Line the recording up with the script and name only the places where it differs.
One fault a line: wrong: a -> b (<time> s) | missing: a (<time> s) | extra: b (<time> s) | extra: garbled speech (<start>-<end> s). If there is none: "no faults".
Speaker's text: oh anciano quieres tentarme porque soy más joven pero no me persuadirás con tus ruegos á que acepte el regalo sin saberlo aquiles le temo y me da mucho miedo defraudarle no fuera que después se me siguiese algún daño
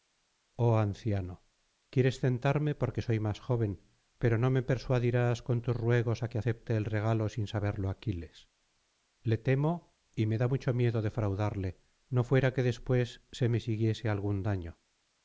no faults